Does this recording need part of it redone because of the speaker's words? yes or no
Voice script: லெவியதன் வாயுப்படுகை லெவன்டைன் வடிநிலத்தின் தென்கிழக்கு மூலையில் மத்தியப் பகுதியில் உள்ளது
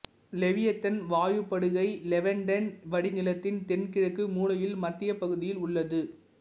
no